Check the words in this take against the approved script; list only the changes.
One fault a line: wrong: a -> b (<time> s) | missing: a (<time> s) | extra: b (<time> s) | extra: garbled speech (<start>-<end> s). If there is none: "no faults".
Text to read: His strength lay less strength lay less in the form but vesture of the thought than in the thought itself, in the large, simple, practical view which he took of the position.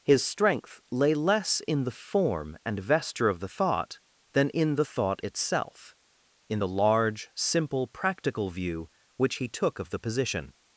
missing: strength lay less (1.6 s)
wrong: but -> and (2.6 s)